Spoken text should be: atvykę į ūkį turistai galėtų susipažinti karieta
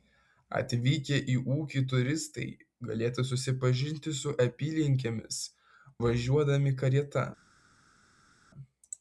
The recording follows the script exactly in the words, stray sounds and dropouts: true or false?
false